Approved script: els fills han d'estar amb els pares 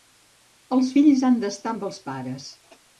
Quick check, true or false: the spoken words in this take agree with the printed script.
true